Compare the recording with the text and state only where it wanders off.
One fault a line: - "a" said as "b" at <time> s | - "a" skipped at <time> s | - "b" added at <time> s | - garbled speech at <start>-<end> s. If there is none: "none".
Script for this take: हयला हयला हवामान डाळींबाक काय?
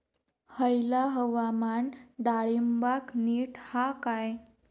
- "हयला" skipped at 1.0 s
- "नीट हा" added at 3.1 s